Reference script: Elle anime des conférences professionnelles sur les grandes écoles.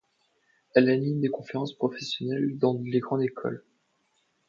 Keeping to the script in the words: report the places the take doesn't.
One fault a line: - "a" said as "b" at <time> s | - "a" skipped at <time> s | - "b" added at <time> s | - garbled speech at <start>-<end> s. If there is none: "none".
- "sur" said as "dans" at 2.6 s